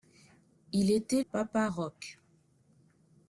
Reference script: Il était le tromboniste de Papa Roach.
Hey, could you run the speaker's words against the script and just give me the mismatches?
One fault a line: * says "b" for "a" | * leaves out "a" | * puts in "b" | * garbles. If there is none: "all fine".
* leaves out "le tromboniste de"